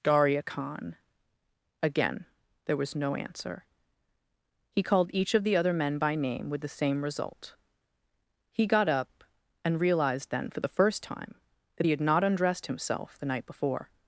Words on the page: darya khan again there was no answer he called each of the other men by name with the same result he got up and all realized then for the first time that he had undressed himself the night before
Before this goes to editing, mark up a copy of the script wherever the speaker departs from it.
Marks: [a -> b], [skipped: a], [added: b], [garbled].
darya khan again there was no answer he called each of the other men by name with the same result he got up and [skipped: all] realized then for the first time that he had [added: not] undressed himself the night before